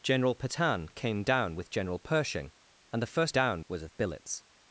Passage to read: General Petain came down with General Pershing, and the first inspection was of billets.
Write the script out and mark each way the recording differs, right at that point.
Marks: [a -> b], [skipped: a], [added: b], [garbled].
General Petain came down with General Pershing, and the first [inspection -> down] was of billets.